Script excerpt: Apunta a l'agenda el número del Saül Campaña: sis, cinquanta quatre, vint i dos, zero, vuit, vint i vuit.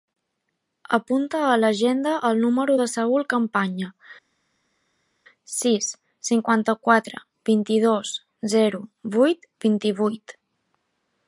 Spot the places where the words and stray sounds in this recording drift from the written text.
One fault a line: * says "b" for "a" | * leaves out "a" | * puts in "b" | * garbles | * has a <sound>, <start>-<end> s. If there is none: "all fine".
all fine